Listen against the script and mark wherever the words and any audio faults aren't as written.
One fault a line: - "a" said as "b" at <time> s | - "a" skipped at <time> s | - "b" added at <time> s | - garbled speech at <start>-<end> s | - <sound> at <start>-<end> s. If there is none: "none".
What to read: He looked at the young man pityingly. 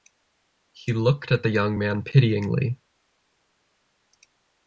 none